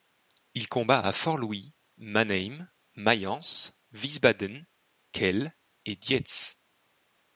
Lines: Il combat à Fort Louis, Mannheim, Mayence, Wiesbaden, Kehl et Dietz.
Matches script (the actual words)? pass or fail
pass